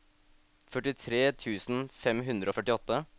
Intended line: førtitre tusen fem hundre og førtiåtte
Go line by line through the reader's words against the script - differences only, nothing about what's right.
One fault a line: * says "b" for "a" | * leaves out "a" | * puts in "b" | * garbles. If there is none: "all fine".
all fine